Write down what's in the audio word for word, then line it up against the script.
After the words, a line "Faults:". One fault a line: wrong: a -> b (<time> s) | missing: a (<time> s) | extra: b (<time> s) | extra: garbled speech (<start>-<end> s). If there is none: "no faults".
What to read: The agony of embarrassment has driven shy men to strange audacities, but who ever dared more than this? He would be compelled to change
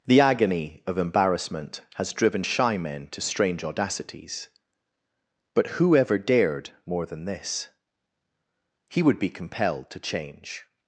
The agony of embarrassment has driven shy men to strange audacities, but who ever dared more than this? He would be compelled to change
Faults:
no faults